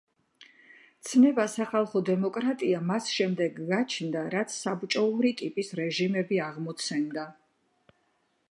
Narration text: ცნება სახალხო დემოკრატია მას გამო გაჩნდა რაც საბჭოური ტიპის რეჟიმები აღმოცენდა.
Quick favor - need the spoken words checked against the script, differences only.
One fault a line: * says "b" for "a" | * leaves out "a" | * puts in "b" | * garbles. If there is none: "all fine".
* says "შემდეგ" for "გამო"